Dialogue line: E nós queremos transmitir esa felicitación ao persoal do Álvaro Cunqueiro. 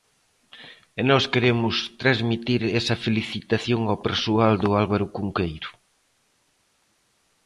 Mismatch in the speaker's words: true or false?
false